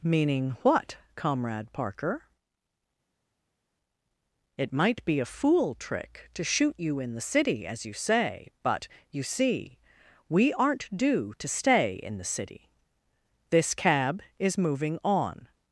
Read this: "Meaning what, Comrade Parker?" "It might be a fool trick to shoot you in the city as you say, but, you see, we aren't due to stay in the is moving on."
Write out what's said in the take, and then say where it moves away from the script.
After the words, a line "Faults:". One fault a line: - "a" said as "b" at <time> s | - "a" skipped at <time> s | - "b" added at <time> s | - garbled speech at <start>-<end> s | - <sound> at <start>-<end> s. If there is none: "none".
"Meaning what, Comrade Parker?" "It might be a fool trick to shoot you in the city as you say, but, you see, we aren't due to stay in the city. This cab is moving on."
Faults:
- "city This cab" added at 12.2 s